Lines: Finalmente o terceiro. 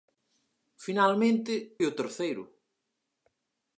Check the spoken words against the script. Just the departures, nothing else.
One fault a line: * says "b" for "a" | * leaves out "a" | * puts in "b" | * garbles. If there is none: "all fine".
all fine